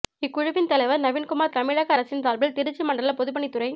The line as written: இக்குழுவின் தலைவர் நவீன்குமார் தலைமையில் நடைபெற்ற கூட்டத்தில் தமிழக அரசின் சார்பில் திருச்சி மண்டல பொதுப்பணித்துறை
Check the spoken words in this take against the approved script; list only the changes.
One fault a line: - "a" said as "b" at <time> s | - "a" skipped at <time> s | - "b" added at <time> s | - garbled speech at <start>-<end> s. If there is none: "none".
- "தலைமையில் நடைபெற்ற கூட்டத்தில்" skipped at 1.5 s